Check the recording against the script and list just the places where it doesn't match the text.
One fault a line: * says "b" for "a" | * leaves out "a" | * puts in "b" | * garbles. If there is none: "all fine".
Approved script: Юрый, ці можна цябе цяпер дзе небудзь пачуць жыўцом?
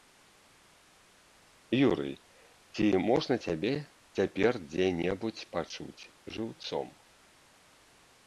all fine